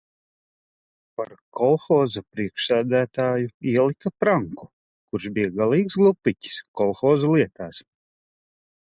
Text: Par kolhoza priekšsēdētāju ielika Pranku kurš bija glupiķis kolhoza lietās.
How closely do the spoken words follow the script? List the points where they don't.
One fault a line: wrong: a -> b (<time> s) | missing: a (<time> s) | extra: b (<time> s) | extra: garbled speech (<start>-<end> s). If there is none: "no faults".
extra: galīgs (5.6 s)